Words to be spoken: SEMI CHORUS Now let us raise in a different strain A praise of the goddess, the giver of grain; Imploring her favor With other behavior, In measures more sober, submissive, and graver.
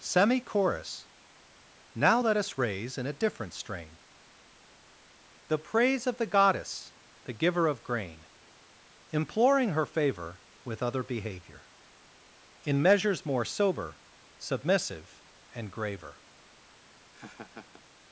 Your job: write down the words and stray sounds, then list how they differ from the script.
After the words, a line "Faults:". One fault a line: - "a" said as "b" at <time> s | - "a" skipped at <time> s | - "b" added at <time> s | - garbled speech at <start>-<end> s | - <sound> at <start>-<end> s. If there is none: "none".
SEMI CHORUS Now let us raise in a different strain The praise of the goddess, the giver of grain; Imploring her favor With other behavior, In measures more sober, submissive, and graver.
Faults:
- "A" said as "The" at 5.5 s
- laugh at 16.7-17.8 s